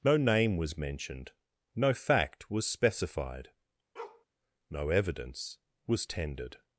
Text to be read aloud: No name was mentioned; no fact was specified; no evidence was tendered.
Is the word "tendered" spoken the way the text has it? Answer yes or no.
yes